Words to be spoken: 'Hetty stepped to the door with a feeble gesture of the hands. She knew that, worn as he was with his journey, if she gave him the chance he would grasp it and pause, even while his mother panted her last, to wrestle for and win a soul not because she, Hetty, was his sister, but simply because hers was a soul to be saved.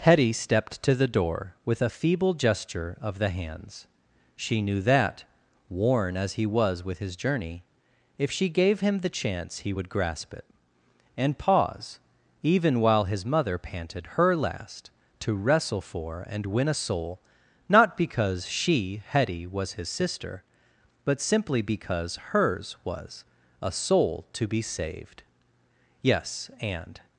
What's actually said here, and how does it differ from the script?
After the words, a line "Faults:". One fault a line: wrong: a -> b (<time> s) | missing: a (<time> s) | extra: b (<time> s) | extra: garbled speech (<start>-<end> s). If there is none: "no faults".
'Hetty stepped to the door with a feeble gesture of the hands. She knew that, worn as he was with his journey, if she gave him the chance he would grasp it and pause, even while his mother panted her last, to wrestle for and win a soul not because she, Hetty, was his sister, but simply because hers was a soul to be saved. Yes, and
Faults:
extra: Yes and (26.0 s)